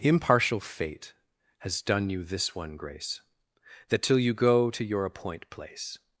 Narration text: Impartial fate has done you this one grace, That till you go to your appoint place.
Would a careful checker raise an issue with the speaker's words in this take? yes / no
no